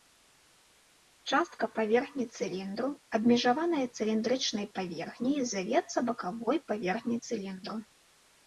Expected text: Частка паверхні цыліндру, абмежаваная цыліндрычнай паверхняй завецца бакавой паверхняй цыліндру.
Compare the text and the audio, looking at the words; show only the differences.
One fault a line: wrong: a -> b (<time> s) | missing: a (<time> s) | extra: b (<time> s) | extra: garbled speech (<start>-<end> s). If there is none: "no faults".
no faults